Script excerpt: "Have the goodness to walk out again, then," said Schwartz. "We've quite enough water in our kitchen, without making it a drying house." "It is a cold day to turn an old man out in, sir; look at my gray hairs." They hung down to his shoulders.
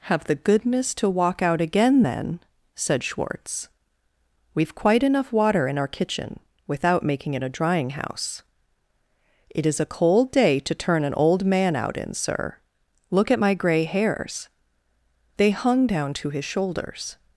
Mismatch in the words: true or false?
false